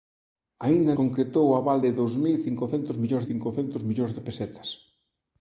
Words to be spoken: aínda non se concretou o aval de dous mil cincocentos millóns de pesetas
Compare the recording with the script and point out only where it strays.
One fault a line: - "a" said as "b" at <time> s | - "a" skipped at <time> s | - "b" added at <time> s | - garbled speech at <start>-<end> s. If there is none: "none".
- "non se" skipped at 0.9 s
- "cincocentos millóns" added at 3.3 s